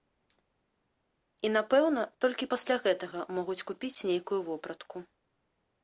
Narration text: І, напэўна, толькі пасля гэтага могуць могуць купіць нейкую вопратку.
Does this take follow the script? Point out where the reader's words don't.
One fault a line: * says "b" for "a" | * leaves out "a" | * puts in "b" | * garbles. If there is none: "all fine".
* leaves out "могуць"